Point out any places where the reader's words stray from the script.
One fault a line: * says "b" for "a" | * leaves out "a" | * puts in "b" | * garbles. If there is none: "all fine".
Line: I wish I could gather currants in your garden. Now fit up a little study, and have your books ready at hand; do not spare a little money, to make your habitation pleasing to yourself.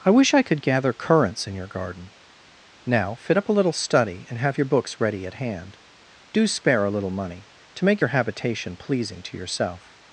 * leaves out "not"